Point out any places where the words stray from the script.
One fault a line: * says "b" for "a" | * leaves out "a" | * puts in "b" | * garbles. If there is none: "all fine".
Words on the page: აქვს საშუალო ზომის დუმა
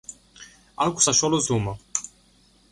* leaves out "ზომის"